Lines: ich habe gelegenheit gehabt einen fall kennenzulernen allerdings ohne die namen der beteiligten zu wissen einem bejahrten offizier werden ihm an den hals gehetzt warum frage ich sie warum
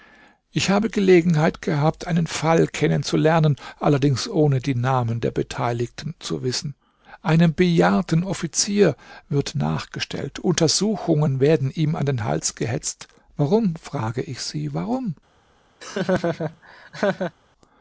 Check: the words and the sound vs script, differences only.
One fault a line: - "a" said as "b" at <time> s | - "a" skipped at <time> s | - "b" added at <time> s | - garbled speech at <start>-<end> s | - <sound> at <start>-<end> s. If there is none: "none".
- "wird nachgestellt untersuchungen" added at 9.3 s
- laugh at 15.8-17.3 s